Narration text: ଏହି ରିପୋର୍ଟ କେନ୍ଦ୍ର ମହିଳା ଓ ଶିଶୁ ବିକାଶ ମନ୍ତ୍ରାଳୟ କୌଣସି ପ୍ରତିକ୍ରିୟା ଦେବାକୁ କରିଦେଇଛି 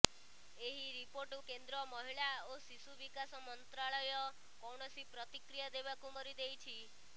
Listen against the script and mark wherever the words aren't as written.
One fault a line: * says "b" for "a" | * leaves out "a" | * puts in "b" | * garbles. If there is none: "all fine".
all fine